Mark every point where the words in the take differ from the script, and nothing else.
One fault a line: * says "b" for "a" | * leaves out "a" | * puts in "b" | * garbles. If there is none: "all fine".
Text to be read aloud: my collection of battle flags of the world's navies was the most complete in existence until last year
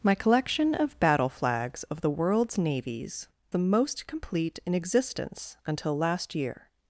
* leaves out "was"